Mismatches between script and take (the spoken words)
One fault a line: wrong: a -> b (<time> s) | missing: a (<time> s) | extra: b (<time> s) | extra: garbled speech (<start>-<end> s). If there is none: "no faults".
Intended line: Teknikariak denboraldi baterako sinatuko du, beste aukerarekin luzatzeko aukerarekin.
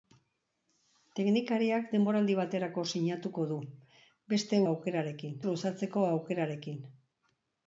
no faults